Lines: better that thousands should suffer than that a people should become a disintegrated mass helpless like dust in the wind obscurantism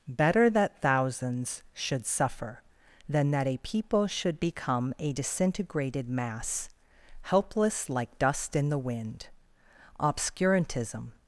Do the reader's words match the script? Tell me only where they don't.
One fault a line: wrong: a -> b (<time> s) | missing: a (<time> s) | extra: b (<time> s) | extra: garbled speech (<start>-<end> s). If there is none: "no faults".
no faults